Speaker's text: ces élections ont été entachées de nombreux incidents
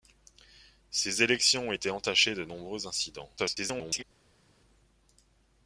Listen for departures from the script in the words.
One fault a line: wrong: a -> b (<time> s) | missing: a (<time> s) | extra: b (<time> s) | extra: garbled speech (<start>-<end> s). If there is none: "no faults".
extra: garbled speech (3.4-4.0 s)